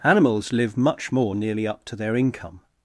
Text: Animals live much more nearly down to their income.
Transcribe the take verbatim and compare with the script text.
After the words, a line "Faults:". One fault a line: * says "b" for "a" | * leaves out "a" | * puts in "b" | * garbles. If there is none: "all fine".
Animals live much more nearly up to their income.
Faults:
* says "up" for "down"